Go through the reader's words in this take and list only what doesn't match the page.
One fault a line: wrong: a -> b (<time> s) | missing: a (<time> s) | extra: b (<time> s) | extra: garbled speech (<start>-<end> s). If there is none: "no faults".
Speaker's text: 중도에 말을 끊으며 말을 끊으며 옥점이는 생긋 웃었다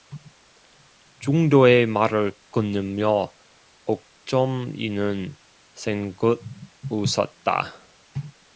missing: 말을 끊으며 (3.3 s)